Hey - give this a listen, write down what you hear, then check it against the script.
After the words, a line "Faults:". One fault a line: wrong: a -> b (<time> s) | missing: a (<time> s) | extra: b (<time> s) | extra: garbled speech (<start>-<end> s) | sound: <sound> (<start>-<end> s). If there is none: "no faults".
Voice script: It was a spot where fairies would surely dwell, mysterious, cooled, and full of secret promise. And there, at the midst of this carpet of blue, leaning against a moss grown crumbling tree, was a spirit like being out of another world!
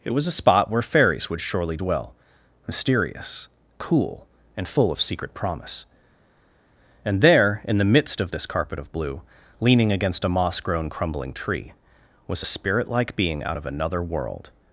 It was a spot where fairies would surely dwell, mysterious, cool, and full of secret promise. And there, in the midst of this carpet of blue, leaning against a moss grown crumbling tree, was a spirit like being out of another world!
Faults:
wrong: cooled -> cool (3.8 s)
wrong: at -> in (7.6 s)